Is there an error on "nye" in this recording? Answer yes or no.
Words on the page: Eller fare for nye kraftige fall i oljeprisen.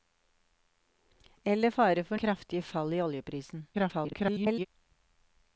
yes